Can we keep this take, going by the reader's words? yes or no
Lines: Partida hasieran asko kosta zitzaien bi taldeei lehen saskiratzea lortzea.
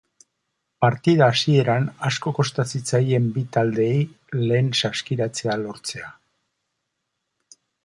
yes